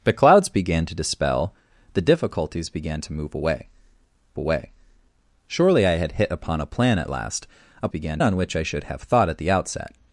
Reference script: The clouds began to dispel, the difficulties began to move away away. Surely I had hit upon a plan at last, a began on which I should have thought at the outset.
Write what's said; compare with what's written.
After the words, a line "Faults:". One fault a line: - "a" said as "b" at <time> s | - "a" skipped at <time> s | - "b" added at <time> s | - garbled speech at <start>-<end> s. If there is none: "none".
The clouds began to dispel, the difficulties began to move away away. Surely I had hit upon a plan at last, a began on which I should have thought at the outset.
Faults:
none